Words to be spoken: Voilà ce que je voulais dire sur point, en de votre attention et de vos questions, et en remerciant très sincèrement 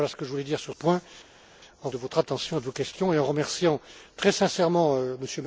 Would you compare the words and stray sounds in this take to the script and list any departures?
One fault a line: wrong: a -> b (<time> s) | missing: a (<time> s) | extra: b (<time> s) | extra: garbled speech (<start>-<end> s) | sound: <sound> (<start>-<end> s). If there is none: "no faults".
no faults